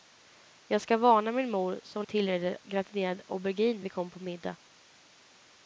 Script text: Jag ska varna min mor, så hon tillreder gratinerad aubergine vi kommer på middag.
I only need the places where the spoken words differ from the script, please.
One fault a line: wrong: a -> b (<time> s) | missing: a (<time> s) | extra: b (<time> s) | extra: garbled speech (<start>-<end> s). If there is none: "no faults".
no faults